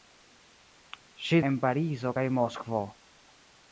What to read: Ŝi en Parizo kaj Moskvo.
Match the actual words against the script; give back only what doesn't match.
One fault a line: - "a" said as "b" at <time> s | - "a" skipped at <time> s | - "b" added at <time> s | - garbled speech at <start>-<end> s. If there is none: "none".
none